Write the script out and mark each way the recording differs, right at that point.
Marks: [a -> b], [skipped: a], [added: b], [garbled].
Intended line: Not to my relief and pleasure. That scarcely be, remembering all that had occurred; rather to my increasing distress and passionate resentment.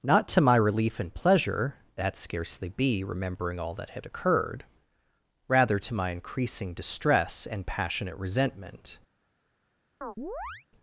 Not to my relief and pleasure. That scarcely be, remembering all that had occurred; rather to my increasing distress and passionate resentment.